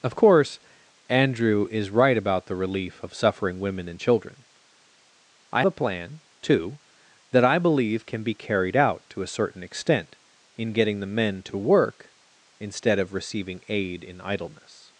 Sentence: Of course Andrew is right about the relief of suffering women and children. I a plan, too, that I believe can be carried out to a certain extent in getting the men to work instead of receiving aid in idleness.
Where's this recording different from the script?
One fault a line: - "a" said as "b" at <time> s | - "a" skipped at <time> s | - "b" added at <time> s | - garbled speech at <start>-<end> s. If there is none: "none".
none